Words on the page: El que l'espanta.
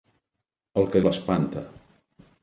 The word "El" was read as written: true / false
true